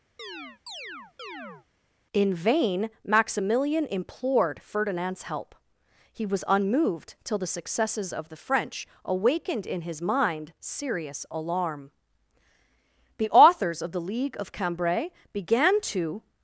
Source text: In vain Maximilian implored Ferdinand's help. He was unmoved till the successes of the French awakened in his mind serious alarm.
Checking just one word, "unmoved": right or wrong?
right